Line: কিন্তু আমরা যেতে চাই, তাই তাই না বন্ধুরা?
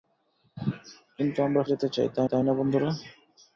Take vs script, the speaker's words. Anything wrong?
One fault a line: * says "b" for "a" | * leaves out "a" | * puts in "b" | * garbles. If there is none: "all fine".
all fine